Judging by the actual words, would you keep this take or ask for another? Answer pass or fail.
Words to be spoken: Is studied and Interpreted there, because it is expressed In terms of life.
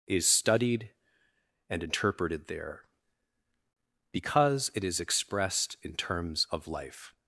pass